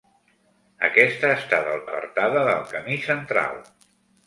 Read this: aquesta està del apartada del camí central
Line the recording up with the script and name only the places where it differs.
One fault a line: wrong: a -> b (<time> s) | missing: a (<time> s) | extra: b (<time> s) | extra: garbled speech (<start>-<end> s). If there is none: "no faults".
no faults